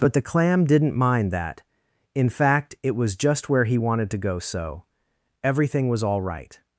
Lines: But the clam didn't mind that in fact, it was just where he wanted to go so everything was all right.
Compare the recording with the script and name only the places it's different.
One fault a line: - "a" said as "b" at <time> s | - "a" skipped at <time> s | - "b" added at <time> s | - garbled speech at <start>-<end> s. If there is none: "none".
none